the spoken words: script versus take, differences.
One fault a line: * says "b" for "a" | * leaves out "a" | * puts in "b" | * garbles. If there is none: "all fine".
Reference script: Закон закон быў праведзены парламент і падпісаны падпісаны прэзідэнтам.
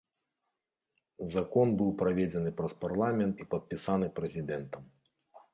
* leaves out "закон"
* puts in "праз"
* leaves out "падпісаны"